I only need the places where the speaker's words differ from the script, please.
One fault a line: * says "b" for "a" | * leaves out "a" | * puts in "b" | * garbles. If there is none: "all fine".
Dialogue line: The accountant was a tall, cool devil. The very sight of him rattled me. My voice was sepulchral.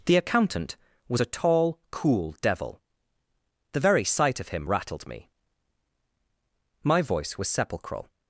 all fine